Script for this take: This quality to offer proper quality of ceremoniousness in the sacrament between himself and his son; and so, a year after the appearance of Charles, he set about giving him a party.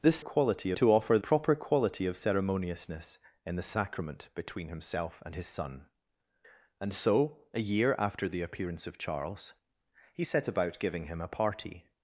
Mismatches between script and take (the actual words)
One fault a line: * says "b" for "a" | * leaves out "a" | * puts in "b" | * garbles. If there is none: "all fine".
all fine